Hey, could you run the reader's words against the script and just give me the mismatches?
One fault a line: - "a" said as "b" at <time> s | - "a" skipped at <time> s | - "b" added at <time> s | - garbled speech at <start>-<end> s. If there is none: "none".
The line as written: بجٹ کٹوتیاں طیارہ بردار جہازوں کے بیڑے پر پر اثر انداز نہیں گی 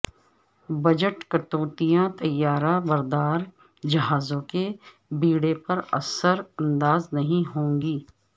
- "پر" skipped at 5.8 s
- "ہوں" added at 7.6 s